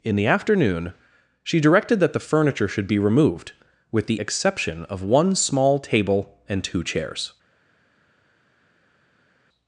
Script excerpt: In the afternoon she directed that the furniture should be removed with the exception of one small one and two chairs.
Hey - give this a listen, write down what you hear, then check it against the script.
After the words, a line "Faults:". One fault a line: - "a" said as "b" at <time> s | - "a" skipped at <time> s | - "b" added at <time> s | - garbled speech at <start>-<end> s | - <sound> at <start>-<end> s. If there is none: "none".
In the afternoon she directed that the furniture should be removed with the exception of one small table and two chairs.
Faults:
- "one" said as "table" at 5.8 s